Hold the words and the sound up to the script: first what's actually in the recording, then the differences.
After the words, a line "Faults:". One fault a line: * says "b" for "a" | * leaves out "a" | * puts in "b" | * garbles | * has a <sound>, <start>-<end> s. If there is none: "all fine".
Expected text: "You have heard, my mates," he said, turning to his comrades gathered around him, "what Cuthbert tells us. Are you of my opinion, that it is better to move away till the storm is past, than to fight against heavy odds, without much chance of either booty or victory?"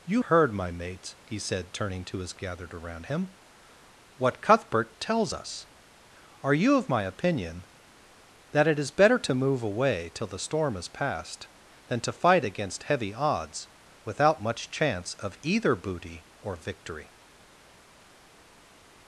"You heard, my mates," he said, turning to his gathered around him, "what Cuthbert tells us. Are you of my opinion, that it is better to move away till the storm is past, than to fight against heavy odds, without much chance of either booty or victory?"
Faults:
* leaves out "have"
* leaves out "comrades"